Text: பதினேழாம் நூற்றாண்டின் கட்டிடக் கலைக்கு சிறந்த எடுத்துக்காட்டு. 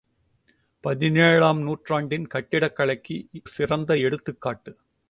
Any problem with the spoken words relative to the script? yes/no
no